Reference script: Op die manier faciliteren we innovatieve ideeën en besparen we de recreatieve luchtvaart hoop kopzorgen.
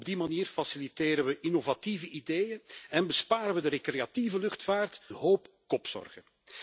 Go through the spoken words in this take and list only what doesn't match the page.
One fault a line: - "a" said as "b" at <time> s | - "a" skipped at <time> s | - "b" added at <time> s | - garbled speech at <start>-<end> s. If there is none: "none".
none